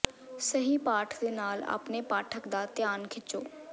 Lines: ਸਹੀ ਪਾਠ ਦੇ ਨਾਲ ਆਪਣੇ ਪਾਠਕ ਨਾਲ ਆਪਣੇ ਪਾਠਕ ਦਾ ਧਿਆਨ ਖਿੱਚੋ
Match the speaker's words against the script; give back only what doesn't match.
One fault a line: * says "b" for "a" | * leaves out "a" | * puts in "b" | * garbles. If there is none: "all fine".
* leaves out "ਨਾਲ ਆਪਣੇ ਪਾਠਕ"